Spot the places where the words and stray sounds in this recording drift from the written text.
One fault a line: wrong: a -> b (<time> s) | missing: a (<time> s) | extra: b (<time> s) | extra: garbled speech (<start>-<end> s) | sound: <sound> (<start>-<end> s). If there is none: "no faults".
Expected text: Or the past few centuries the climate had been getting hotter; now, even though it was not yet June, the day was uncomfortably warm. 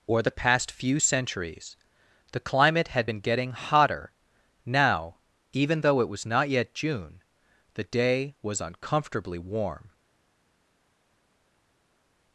no faults